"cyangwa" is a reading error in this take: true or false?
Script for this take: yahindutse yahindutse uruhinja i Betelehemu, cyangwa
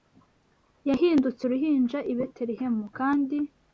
true